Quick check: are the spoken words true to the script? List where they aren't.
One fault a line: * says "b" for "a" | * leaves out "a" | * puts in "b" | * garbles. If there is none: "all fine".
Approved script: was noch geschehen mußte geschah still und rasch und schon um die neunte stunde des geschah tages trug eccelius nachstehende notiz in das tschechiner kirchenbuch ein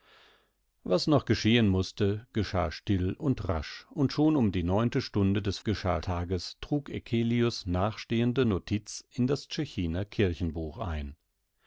all fine